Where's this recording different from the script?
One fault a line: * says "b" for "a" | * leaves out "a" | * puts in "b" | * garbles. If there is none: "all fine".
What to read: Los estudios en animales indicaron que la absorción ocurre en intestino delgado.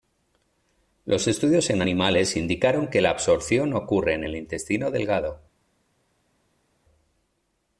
* puts in "el"